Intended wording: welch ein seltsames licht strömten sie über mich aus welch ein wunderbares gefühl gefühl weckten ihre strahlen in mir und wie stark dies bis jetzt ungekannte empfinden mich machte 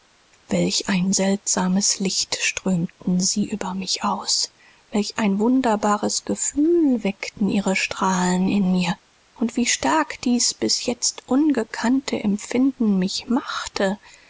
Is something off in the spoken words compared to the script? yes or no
yes